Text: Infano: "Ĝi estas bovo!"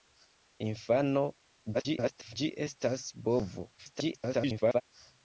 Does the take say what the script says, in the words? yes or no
no